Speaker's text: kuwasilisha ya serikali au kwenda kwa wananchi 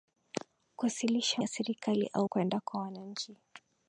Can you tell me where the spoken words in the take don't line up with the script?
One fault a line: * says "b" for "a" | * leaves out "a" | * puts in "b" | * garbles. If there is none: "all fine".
all fine